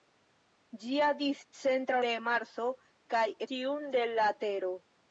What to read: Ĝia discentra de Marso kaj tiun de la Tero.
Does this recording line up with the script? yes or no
yes